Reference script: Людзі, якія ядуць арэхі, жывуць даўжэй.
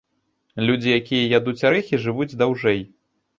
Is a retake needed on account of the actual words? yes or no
no